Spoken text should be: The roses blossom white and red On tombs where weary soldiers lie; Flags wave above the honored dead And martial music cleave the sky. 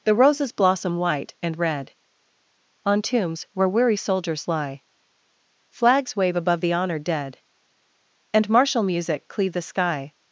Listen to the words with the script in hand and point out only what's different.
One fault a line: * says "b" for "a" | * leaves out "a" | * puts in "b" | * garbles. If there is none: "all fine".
all fine